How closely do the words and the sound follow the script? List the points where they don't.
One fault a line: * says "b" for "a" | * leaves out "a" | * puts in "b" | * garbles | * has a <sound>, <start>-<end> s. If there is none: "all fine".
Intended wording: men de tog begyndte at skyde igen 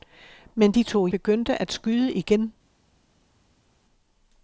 all fine